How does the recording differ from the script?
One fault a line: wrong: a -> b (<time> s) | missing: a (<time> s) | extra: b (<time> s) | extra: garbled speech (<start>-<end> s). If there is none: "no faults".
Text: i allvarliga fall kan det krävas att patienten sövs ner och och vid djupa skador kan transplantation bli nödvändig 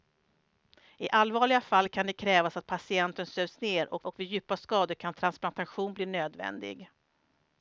no faults